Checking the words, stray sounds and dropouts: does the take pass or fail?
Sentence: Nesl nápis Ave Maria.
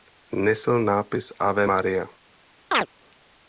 fail